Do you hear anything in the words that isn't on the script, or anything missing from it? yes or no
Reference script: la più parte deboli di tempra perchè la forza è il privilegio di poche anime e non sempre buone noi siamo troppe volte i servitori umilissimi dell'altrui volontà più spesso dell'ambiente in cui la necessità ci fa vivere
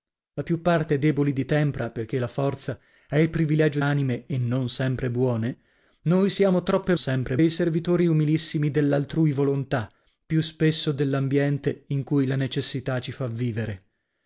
yes